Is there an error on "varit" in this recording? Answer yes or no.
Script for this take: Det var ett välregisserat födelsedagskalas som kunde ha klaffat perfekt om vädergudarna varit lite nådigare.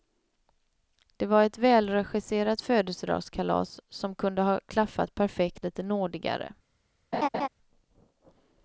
yes